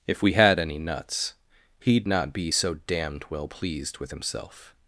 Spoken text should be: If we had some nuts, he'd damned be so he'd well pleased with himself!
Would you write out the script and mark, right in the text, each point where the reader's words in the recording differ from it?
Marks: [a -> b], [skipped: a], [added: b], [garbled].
If we had [some -> any] nuts, he'd [damned -> not] be so [he'd -> damned] well pleased with himself!